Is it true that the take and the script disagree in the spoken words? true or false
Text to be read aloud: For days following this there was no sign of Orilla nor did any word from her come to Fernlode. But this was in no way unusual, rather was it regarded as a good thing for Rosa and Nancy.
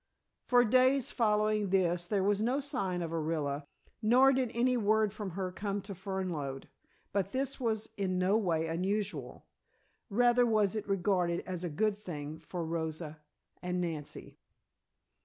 false